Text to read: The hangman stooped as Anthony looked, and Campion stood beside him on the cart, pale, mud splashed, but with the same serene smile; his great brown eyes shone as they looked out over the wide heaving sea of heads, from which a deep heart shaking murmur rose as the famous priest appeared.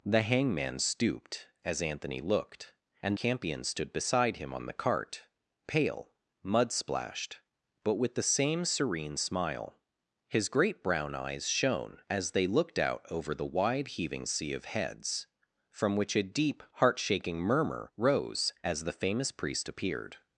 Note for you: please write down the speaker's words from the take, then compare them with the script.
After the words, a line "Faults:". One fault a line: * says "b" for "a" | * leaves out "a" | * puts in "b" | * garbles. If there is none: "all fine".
The hangman stooped as Anthony looked, and Campion stood beside him on the cart, pale, mud splashed, but with the same serene smile; his great brown eyes shone as they looked out over the wide heaving sea of heads, from which a deep heart shaking murmur rose as the famous priest appeared.
Faults:
all fine